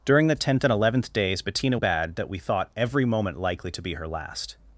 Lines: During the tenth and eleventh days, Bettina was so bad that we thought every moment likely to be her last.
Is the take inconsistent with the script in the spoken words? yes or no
yes